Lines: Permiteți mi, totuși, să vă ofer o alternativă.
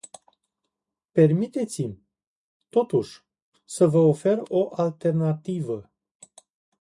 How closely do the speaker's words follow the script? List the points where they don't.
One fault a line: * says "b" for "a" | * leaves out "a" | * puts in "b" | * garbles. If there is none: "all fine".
all fine